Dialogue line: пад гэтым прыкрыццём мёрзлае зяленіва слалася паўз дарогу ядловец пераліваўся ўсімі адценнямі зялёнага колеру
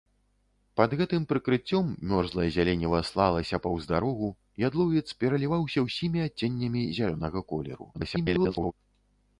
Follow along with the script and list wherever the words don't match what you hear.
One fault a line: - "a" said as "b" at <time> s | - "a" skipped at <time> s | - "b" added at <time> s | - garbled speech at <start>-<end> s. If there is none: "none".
- garbled speech at 7.9-8.7 s